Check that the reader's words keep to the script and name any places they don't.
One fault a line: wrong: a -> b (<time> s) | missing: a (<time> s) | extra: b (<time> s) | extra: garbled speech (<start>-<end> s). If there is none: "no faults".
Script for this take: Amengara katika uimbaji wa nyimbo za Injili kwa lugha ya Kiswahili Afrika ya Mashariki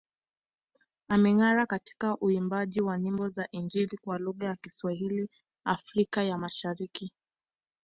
no faults